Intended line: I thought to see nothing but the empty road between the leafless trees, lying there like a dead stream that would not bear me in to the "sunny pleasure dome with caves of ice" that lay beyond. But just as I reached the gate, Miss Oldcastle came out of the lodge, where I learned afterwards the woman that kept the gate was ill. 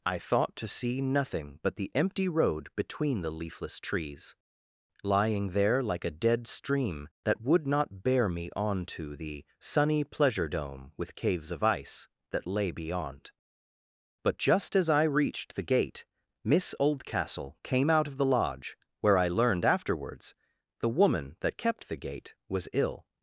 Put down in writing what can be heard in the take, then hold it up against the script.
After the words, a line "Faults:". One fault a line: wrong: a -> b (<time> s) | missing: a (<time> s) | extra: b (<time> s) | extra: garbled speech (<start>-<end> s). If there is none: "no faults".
I thought to see nothing but the empty road between the leafless trees, lying there like a dead stream that would not bear me on to the "sunny pleasure dome with caves of ice" that lay beyond. But just as I reached the gate, Miss Oldcastle came out of the lodge, where I learned afterwards the woman that kept the gate was ill.
Faults:
wrong: in -> on (8.6 s)